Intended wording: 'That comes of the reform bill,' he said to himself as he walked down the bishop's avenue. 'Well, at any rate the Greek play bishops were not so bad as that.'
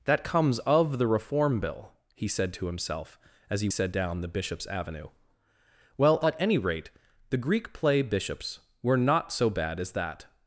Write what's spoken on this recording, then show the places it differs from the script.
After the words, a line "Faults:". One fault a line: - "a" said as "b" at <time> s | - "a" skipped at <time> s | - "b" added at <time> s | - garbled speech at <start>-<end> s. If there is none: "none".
'That comes of the reform bill,' he said to himself as he said down the bishop's avenue. 'Well, at any rate the Greek play bishops were not so bad as that.'
Faults:
- "walked" said as "said" at 3.7 s